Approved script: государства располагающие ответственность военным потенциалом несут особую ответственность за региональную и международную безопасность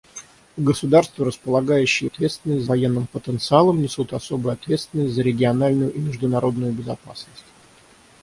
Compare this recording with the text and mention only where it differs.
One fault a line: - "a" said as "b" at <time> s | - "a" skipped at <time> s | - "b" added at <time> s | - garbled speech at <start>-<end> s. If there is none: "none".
none